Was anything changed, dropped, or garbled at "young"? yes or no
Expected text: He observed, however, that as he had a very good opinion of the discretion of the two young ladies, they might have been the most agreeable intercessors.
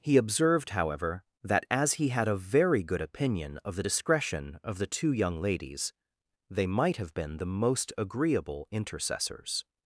no